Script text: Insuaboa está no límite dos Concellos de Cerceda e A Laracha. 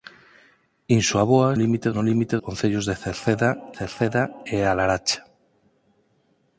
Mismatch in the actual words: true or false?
true